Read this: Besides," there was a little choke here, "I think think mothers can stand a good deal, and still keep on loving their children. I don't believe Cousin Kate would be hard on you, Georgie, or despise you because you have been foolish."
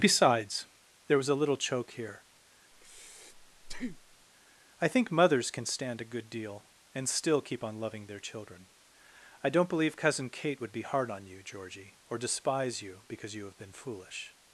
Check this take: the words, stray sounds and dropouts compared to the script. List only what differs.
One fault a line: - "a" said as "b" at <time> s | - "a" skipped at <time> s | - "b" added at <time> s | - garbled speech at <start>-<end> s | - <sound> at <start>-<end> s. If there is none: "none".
- breath at 2.7-4.3 s
- "think" skipped at 5.1 s